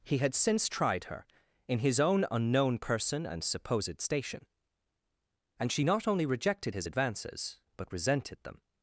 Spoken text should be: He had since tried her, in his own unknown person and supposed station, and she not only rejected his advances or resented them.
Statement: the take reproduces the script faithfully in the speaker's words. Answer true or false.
false